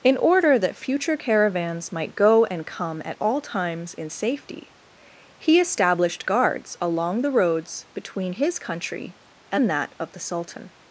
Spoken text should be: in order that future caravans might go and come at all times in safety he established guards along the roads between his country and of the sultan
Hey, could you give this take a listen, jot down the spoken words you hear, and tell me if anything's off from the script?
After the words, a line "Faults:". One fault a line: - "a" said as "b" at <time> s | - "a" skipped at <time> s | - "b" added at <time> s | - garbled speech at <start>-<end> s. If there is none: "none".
in order that future caravans might go and come at all times in safety he established guards along the roads between his country and that of the sultan
Faults:
- "that" added at 9.7 s